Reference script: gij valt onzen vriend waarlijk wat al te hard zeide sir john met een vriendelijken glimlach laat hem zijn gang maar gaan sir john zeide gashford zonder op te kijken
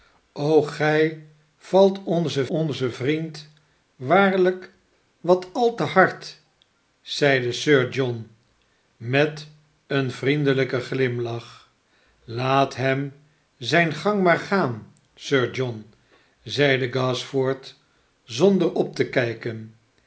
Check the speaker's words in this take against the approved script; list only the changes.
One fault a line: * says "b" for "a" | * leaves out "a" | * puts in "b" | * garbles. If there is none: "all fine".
* puts in "onzen"